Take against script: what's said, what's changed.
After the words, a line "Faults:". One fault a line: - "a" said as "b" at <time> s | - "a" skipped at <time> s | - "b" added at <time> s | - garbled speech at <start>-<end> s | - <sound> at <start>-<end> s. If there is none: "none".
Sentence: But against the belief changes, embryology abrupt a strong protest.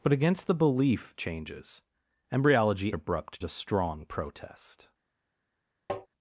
But against the belief changes, embryology abrupt a strong protest.
Faults:
- tap at 5.9-6.1 s